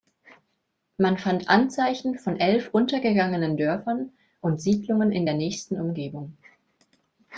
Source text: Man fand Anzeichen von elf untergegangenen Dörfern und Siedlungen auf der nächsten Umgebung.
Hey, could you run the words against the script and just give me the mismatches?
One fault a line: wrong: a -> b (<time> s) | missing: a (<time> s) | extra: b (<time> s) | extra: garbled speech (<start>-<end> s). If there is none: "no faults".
wrong: auf -> in (5.1 s)